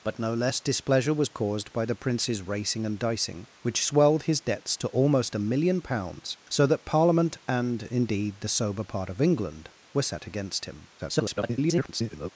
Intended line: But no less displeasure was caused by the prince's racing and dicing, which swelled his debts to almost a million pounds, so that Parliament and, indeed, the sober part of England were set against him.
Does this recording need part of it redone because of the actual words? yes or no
yes